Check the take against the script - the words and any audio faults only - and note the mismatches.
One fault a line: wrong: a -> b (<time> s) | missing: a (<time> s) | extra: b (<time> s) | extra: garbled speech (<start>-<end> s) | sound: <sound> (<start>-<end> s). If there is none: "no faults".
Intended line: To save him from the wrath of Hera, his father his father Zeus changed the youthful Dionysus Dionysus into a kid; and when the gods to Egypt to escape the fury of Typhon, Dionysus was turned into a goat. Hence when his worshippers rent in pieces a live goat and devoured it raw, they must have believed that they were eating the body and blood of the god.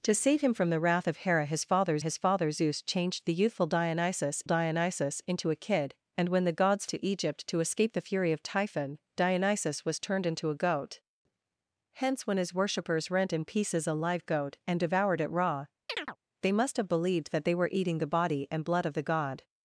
sound: chirp (15.9-16.2 s)